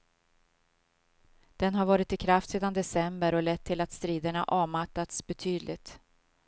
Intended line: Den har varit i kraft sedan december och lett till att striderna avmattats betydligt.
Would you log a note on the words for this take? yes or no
no